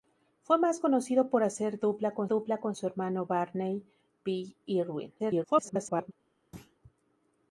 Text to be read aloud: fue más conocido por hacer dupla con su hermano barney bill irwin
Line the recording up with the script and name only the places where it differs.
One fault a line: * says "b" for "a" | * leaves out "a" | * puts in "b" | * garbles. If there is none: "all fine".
* puts in "dupla con"
* garbles